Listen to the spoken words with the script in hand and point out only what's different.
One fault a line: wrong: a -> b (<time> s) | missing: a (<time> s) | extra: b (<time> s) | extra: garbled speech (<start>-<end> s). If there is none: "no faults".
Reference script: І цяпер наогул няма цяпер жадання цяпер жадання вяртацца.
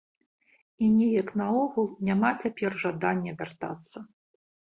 wrong: цяпер -> неяк (0.9 s)
missing: цяпер жадання (3.3 s)